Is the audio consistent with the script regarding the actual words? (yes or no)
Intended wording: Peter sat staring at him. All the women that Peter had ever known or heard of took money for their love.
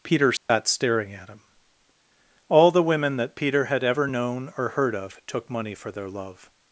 yes